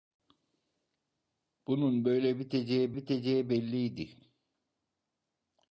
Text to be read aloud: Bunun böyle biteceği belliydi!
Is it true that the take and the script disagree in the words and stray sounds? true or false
true